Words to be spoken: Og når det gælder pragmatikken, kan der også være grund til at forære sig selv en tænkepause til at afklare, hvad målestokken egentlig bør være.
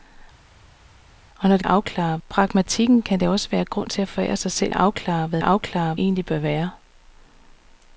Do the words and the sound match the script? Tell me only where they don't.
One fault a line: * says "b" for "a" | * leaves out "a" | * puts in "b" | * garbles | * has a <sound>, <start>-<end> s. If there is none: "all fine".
* says "afklare" for "gælder"
* leaves out "en tænkepause til"
* says "afklare" for "målestokken"